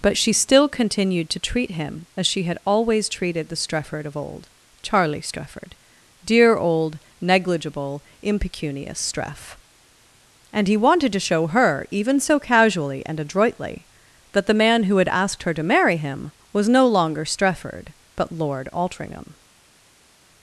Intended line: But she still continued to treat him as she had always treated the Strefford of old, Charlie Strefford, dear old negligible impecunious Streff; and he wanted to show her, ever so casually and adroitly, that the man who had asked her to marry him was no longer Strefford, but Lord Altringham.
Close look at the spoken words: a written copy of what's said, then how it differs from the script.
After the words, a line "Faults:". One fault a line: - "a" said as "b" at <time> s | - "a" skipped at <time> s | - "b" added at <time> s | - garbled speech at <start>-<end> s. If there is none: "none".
But she still continued to treat him as she had always treated the Strefford of old, Charlie Strefford, dear old negligible impecunious Streff; and he wanted to show her, even so casually and adroitly, that the man who had asked her to marry him was no longer Strefford, but Lord Altringham.
Faults:
- "ever" said as "even" at 11.9 s